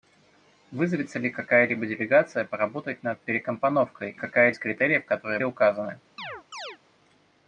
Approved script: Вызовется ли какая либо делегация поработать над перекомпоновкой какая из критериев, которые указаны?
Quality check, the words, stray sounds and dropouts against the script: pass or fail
fail